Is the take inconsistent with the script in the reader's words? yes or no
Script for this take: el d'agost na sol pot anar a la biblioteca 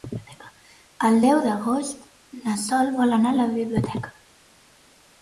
yes